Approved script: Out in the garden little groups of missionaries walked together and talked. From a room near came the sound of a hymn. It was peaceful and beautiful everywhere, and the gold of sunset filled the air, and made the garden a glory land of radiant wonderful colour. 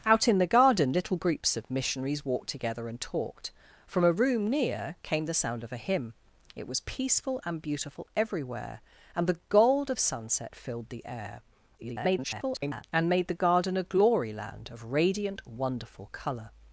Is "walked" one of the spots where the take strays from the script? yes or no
no